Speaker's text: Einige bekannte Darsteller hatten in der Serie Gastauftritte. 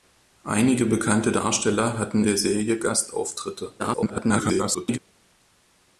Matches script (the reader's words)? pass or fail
fail